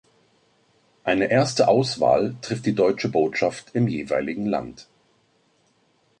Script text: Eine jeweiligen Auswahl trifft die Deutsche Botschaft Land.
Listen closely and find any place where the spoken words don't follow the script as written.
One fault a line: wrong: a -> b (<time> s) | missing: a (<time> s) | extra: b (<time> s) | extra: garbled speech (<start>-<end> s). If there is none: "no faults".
wrong: jeweiligen -> erste (1.3 s)
extra: im jeweiligen (3.7 s)